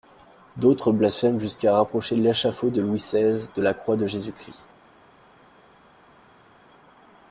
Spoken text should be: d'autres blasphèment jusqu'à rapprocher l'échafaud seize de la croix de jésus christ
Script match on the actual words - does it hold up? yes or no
no